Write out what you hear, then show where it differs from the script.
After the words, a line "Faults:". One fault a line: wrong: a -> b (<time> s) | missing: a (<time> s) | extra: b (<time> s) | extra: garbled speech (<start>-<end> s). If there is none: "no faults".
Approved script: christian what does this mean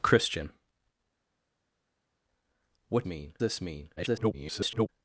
christian what mean this mean [garbled]
Faults:
wrong: does -> mean (3.0 s)
extra: garbled speech (4.0-4.9 s)